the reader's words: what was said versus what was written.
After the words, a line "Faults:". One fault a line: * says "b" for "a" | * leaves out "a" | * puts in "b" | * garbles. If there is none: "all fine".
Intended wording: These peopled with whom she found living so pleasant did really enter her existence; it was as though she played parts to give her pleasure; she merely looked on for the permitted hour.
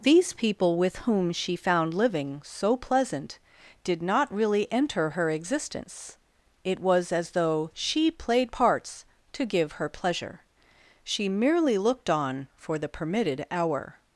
These people with whom she found living so pleasant did not really enter her existence; it was as though she played parts to give her pleasure; she merely looked on for the permitted hour.
Faults:
* says "people" for "peopled"
* puts in "not"